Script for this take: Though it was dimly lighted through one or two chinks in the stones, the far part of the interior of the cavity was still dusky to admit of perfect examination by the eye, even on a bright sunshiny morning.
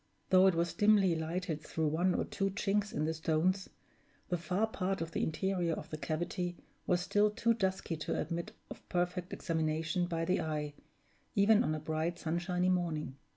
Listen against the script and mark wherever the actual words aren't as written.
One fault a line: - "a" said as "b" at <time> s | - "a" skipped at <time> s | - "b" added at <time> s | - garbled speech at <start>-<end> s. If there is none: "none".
- "too" added at 7.3 s